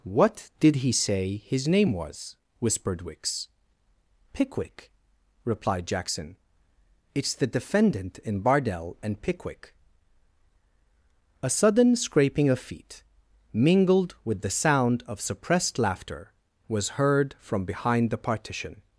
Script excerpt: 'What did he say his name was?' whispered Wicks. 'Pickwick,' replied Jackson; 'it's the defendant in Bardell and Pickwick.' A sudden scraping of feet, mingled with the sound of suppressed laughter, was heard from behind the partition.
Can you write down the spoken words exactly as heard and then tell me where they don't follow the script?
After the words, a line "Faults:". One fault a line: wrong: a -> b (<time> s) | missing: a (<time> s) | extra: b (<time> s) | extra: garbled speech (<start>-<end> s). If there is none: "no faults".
'What did he say his name was?' whispered Wicks. 'Pickwick,' replied Jackson; 'it's the defendant in Bardell and Pickwick.' A sudden scraping of feet, mingled with the sound of suppressed laughter, was heard from behind the partition.
Faults:
no faults